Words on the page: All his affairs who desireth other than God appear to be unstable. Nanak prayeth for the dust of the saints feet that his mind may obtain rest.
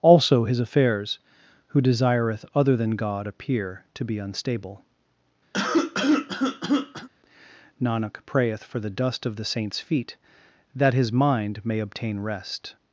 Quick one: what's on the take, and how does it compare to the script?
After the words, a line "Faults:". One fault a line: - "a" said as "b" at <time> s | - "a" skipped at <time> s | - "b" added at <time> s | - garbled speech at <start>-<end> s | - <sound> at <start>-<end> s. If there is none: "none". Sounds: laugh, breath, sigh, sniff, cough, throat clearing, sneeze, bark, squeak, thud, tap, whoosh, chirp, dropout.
Also his affairs who desireth other than God appear to be unstable. Nanak prayeth for the dust of the saints feet that his mind may obtain rest.
Faults:
- "All" said as "Also" at 0.0 s
- cough at 5.5-7.1 s